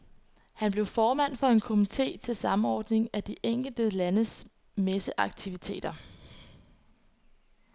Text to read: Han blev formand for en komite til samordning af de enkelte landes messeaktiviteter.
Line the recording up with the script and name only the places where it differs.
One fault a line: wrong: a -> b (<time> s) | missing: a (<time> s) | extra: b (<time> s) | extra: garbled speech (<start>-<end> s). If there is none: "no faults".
no faults